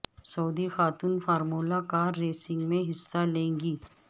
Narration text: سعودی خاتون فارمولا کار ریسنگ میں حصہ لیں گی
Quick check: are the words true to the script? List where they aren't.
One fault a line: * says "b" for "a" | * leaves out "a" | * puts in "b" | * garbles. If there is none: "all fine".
all fine